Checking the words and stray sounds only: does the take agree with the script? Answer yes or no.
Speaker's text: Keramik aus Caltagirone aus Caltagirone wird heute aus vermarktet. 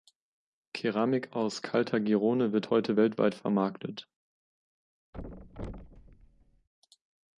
no